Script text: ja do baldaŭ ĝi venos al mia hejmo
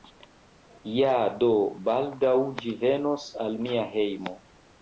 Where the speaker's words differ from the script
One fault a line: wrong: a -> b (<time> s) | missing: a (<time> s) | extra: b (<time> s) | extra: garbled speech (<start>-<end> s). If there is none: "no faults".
no faults